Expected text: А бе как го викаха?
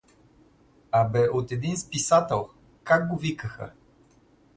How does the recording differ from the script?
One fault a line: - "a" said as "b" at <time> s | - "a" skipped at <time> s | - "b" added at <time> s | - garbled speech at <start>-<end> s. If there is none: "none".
- "от един списател" added at 1.3 s